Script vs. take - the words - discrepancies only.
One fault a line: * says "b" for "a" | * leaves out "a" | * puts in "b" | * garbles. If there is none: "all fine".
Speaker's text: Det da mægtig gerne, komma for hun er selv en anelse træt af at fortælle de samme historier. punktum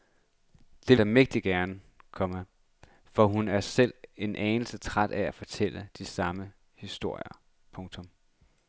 all fine